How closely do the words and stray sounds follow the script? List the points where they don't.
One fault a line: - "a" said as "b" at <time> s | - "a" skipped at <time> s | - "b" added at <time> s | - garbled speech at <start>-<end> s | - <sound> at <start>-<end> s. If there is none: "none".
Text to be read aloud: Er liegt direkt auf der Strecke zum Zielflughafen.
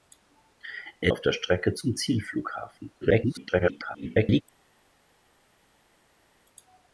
- "liegt direkt" skipped at 1.1 s
- garbled speech at 3.0-4.4 s